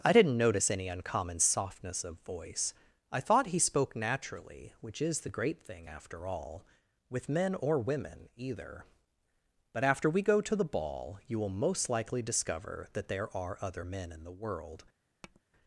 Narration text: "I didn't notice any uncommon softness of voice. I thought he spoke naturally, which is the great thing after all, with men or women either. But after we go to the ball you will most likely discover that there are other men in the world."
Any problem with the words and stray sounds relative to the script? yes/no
yes